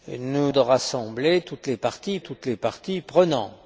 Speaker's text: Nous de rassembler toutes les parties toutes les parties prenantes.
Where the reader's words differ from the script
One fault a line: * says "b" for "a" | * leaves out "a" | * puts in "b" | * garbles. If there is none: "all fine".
all fine